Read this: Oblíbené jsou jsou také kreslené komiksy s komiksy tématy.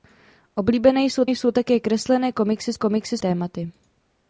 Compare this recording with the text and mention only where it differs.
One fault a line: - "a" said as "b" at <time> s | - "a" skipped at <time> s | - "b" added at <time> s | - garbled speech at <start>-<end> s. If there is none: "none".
none